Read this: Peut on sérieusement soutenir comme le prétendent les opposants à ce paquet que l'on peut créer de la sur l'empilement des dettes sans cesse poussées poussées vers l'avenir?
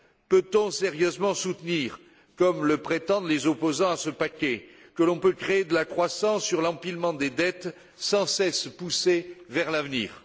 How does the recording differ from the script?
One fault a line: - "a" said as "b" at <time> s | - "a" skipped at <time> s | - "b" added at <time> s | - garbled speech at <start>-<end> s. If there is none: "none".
- "croissance" added at 5.8 s
- "poussées" skipped at 9.4 s